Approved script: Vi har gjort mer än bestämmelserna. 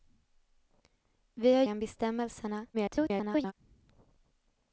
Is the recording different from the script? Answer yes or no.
yes